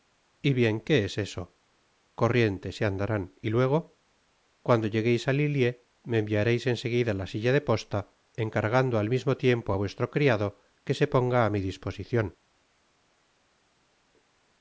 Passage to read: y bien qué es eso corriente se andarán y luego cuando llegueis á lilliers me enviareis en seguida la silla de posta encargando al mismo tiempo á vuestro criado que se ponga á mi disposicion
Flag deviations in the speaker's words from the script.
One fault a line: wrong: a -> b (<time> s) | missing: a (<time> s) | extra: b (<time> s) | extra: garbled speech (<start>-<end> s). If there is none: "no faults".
no faults